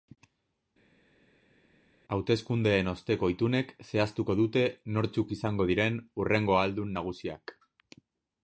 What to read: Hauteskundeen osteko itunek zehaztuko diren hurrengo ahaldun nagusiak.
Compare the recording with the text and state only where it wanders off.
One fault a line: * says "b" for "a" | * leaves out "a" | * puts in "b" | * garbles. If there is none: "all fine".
* puts in "dute nortzuk izango"